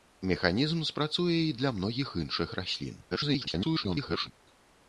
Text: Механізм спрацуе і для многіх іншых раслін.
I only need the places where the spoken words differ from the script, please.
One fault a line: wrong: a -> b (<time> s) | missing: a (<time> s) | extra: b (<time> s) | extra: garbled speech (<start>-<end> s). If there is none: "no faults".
extra: garbled speech (3.1-4.3 s)